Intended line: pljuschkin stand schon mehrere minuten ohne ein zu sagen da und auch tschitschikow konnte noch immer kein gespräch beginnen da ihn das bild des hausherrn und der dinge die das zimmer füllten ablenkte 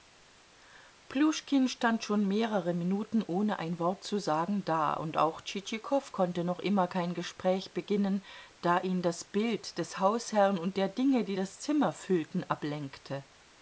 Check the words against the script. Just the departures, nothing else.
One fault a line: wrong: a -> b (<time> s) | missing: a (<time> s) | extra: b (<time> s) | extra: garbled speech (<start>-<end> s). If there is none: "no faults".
extra: wort (3.8 s)